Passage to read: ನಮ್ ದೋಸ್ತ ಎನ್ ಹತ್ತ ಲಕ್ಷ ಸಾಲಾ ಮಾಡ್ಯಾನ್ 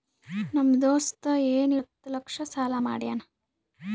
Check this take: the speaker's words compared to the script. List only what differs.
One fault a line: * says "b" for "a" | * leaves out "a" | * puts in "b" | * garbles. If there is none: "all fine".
all fine